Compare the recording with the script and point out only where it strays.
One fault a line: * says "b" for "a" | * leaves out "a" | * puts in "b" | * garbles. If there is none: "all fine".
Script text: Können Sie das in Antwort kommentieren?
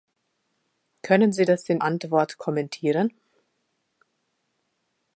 all fine